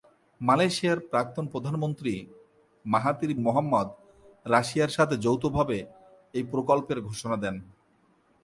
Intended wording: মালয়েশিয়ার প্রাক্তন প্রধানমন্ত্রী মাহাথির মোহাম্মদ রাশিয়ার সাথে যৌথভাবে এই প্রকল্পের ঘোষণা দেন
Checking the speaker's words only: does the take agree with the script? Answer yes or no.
yes